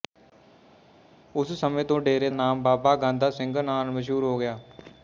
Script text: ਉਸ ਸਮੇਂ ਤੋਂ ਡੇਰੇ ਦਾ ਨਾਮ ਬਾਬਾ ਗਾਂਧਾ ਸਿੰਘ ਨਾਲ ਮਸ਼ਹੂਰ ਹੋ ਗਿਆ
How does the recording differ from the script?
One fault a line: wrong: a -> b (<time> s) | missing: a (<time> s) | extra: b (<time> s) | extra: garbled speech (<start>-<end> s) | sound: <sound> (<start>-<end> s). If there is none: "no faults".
missing: ਦਾ (2.3 s)